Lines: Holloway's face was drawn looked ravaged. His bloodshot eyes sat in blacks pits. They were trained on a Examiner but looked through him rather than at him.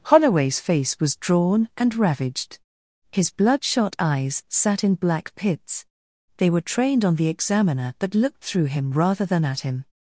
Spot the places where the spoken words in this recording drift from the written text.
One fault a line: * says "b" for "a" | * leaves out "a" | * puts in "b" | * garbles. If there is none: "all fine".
* says "and" for "looked"
* says "black" for "blacks"
* says "the" for "a"